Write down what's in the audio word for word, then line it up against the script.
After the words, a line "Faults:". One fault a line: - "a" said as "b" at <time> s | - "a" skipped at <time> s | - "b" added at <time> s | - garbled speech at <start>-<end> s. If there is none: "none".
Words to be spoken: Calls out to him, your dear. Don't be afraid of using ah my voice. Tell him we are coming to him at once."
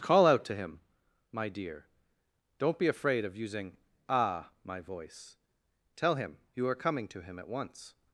Call out to him, my dear. Don't be afraid of using ah my voice. Tell him you are coming to him at once."
Faults:
- "Calls" said as "Call" at 0.0 s
- "your" said as "my" at 1.3 s
- "we" said as "you" at 6.5 s